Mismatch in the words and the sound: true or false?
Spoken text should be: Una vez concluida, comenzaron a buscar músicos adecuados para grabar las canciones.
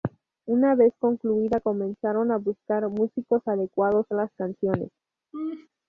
true